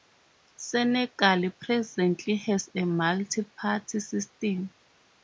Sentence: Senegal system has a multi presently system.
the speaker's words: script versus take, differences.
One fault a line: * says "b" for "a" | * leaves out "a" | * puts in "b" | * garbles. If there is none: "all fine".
* says "presently" for "system"
* says "party" for "presently"